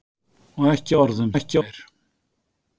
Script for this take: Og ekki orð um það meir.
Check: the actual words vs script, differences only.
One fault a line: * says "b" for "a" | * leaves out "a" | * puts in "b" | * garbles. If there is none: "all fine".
* says "ekki" for "það"